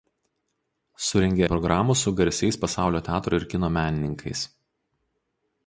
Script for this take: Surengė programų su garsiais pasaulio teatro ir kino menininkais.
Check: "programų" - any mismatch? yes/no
no